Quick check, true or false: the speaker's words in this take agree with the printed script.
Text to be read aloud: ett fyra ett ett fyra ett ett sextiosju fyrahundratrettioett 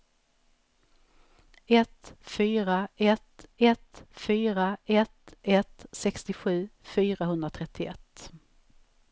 true